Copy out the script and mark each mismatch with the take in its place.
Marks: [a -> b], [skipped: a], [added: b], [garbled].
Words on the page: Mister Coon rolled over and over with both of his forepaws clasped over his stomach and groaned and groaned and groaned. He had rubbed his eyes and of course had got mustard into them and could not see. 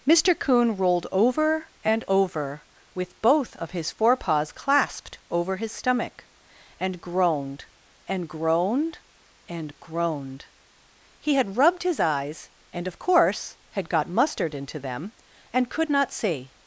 Mister Coon rolled over and over with both of his forepaws clasped over his stomach and groaned and groaned and groaned. He had rubbed his eyes and of course had got mustard into them and could not see.